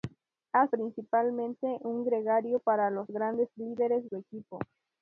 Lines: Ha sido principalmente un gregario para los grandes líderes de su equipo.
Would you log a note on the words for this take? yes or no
yes